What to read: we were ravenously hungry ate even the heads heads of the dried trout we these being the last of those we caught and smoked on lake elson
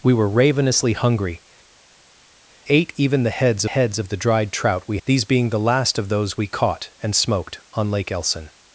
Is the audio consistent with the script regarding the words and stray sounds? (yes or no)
yes